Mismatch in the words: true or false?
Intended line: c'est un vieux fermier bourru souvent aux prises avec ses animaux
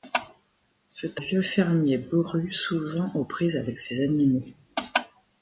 true